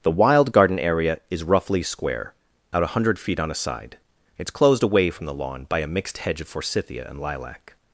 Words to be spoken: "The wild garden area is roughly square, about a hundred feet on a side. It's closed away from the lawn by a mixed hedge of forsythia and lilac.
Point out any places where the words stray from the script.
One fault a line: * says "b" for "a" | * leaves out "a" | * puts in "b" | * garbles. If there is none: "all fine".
* says "out" for "about"